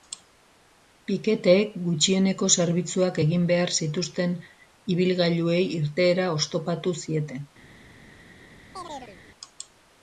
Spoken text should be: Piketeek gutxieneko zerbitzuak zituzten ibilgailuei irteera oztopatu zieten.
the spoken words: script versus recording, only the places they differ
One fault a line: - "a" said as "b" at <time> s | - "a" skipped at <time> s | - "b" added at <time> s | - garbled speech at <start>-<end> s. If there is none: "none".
- "egin behar" added at 3.2 s